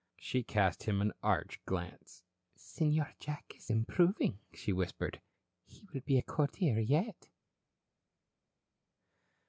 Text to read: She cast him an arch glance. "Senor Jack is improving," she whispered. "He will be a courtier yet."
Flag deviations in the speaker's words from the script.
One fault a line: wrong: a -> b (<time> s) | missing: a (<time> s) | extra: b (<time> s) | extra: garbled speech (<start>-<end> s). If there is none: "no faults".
no faults